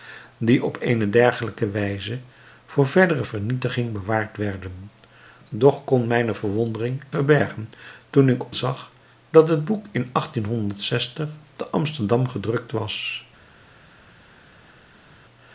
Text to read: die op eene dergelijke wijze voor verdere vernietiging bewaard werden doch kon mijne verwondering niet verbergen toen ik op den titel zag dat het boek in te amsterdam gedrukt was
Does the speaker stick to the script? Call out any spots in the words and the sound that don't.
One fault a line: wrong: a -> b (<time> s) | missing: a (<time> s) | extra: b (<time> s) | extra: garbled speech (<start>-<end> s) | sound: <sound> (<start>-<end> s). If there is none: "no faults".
missing: niet (7.0 s)
missing: op den titel (8.5 s)